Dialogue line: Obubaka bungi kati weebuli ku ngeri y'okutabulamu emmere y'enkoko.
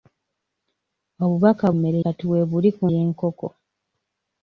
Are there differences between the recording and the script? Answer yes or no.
yes